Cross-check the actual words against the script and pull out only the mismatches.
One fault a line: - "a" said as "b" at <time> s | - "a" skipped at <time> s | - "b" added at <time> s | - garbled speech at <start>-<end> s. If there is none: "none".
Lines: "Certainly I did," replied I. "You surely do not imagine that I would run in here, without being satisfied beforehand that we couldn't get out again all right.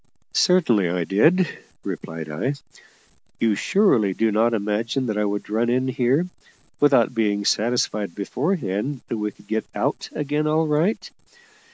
- "couldn't" said as "could" at 9.3 s